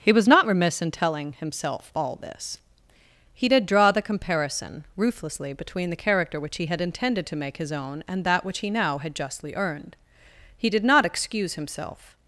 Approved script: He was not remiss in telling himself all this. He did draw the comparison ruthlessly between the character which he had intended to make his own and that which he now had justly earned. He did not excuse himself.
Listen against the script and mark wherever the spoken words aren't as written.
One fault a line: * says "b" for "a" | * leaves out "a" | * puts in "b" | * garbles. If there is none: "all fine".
all fine